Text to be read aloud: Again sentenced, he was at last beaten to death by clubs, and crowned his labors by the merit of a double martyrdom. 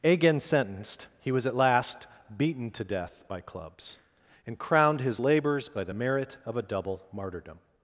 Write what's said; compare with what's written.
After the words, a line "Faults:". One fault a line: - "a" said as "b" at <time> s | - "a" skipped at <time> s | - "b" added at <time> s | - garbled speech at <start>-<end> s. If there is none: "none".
Again sentenced, he was at last beaten to death by clubs, and crowned his labors by the merit of a double martyrdom.
Faults:
none